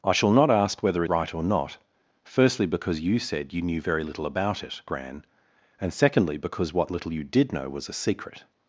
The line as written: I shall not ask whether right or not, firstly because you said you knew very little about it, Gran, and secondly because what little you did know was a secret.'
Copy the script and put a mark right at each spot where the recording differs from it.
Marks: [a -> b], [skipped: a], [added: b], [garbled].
I shall not ask whether right or not, firstly because you said you knew very little about it, Gran, and secondly because what little you did know was a secret.'